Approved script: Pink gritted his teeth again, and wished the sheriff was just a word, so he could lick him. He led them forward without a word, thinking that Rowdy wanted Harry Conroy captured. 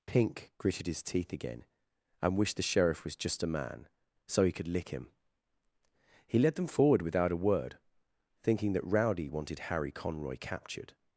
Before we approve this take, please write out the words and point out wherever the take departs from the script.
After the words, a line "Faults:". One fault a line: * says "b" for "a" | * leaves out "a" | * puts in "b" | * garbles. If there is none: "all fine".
Pink gritted his teeth again, and wished the sheriff was just a man, so he could lick him. He led them forward without a word, thinking that Rowdy wanted Harry Conroy captured.
Faults:
* says "man" for "word"